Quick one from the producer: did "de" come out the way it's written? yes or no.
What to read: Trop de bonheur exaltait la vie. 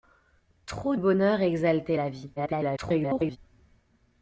no